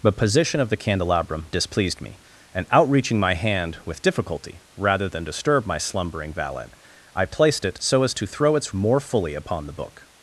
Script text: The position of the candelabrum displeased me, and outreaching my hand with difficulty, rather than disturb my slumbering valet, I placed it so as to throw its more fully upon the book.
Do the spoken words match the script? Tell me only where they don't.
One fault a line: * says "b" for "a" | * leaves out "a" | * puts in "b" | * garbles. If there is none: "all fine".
all fine